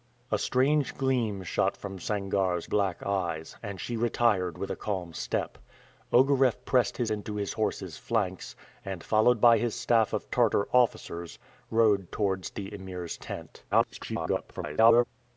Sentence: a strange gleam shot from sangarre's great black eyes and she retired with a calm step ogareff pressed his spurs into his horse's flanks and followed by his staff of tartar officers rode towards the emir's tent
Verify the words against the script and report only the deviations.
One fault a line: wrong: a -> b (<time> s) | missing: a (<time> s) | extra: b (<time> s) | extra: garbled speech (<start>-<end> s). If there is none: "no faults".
missing: great (2.6 s)
missing: spurs (7.1 s)
extra: garbled speech (13.7-15.0 s)